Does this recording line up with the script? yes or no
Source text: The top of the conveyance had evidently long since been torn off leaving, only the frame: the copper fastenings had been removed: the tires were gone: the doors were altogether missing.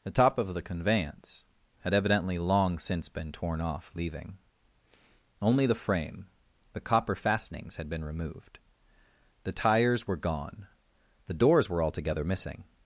yes